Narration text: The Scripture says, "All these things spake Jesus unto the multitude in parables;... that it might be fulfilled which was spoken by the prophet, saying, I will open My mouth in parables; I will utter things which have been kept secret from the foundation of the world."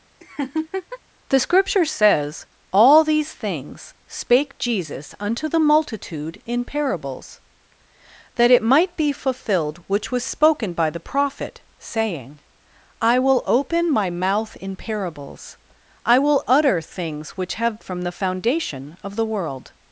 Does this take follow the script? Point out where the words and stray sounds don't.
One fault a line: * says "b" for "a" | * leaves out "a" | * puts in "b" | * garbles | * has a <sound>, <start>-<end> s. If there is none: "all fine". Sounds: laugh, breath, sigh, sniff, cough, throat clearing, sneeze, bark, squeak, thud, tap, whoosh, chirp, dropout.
* has a laugh, 0.2-1.0 s
* leaves out "been kept secret"